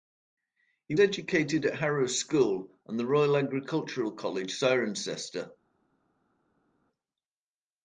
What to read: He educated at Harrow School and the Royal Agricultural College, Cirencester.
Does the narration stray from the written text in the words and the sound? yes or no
no